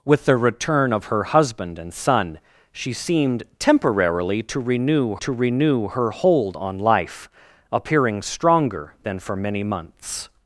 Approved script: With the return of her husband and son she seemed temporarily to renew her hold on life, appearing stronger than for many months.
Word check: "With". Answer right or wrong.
right